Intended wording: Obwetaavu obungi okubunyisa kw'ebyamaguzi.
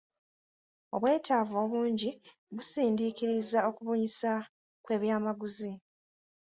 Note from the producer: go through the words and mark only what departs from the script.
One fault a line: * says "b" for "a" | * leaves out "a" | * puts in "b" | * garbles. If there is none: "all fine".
* puts in "busindiikiriza"